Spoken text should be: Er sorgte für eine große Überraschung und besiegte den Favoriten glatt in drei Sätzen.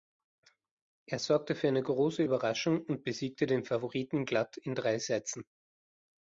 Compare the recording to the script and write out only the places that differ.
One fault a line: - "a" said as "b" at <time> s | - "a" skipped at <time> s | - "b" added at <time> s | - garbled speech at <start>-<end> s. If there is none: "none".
none